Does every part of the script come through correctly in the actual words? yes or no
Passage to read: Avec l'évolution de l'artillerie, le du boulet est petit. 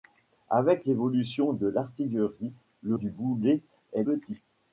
yes